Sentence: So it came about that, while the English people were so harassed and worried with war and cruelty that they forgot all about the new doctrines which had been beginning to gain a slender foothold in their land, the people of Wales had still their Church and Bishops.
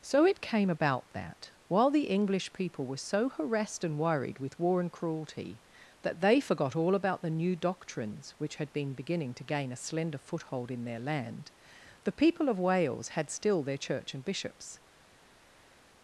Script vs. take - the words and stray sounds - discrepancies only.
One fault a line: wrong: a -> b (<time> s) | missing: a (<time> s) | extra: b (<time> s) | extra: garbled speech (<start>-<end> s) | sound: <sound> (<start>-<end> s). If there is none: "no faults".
no faults